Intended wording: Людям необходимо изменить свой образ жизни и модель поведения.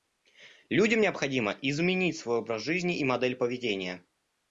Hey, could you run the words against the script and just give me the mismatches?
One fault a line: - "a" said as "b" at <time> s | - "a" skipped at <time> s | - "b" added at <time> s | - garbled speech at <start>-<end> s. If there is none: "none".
none